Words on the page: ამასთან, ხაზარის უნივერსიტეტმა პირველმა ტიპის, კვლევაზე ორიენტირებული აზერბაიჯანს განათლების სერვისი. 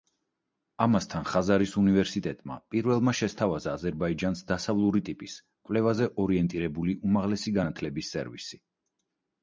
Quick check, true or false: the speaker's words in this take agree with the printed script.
false